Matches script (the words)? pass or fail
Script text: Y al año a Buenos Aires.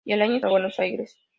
pass